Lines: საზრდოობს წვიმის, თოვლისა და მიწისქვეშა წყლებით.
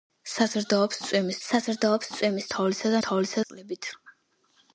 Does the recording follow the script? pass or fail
fail